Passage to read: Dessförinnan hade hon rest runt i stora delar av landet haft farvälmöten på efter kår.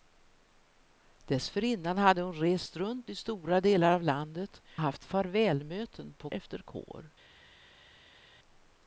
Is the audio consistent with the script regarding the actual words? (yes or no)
yes